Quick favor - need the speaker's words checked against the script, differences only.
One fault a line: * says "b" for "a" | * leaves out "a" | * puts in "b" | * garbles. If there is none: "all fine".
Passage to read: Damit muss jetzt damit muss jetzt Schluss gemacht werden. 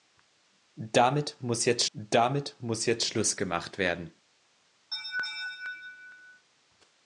all fine